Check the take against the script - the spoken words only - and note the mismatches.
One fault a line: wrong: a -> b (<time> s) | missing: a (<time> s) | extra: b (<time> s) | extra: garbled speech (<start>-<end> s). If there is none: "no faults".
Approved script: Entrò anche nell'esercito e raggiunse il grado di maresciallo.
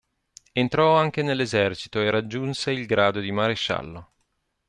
no faults